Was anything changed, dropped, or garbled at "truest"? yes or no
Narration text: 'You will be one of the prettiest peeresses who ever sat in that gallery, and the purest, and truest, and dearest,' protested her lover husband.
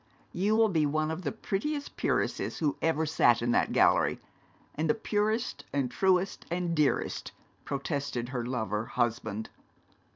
no